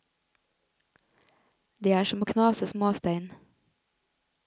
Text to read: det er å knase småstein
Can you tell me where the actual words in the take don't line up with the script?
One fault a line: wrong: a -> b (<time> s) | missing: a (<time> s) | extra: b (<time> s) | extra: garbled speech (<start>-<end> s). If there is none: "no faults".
extra: som (2.0 s)